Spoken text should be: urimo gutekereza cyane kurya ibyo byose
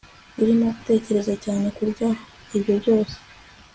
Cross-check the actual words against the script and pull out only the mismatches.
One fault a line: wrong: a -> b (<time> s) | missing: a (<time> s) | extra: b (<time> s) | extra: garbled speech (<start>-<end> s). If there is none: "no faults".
no faults